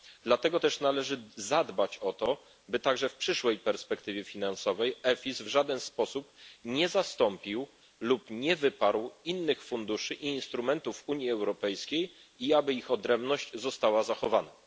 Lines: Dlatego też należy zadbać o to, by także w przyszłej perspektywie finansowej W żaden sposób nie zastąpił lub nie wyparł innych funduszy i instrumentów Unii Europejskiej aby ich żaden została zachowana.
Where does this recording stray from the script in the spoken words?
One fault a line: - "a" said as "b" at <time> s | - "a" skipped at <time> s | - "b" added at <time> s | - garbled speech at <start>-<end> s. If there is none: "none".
- "EFIS" added at 5.0 s
- "i" added at 12.4 s
- "żaden" said as "odrębność" at 12.9 s